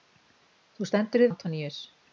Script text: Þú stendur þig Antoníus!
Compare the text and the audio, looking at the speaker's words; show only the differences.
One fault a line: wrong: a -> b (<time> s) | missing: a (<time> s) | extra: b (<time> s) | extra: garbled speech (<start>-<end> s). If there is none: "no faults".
no faults